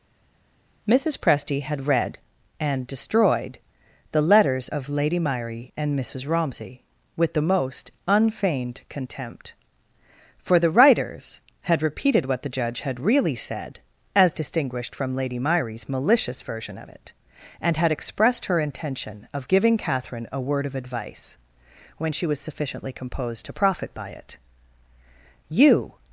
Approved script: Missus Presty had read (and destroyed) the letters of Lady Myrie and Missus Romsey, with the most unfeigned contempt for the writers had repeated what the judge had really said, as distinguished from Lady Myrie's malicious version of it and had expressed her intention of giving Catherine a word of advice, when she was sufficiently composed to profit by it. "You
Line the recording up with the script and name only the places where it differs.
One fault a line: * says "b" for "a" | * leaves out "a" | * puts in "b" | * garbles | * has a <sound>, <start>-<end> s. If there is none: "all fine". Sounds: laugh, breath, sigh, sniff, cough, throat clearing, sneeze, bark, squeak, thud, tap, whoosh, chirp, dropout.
all fine